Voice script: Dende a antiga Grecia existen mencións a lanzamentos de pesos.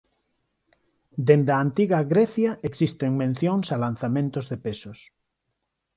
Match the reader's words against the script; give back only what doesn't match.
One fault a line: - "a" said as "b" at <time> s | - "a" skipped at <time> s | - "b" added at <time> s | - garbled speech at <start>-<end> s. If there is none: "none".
none